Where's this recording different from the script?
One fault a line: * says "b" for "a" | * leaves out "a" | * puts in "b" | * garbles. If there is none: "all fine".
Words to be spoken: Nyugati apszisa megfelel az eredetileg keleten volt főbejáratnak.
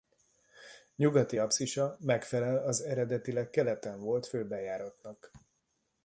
all fine